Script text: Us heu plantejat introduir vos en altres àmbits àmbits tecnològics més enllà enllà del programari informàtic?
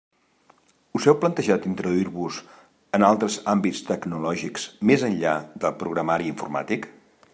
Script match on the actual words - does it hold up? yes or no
no